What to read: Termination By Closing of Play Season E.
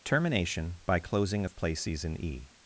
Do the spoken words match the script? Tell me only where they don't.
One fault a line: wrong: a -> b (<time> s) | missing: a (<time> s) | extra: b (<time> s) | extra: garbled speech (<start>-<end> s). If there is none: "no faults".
no faults